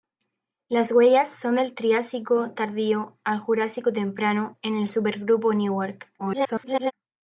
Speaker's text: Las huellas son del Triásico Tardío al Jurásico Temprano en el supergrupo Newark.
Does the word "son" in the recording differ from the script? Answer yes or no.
no